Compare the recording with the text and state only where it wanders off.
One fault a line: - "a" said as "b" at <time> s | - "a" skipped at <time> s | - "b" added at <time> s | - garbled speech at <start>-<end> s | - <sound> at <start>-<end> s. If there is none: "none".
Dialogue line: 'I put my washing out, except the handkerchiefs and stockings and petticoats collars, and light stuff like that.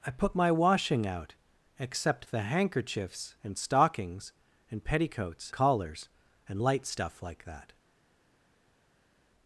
none